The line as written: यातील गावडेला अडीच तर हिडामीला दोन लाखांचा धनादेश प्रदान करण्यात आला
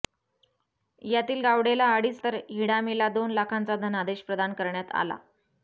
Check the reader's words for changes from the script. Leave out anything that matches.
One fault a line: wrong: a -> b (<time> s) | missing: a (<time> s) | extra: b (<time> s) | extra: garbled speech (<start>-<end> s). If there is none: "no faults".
no faults